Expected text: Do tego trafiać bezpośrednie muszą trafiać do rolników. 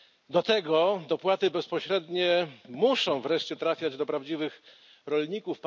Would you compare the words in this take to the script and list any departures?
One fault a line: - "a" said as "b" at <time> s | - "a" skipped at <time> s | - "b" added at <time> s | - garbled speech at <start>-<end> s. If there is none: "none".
- "trafiać" said as "dopłaty" at 1.1 s
- "wreszcie" added at 3.2 s
- "prawdziwych" added at 4.0 s